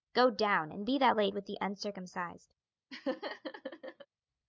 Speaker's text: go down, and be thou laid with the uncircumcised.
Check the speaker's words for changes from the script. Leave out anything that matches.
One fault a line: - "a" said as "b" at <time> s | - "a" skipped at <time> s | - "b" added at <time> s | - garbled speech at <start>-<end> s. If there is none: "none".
none